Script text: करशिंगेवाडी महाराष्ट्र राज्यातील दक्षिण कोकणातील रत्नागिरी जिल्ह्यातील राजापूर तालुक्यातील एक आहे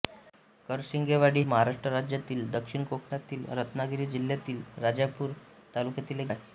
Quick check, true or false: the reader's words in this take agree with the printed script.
true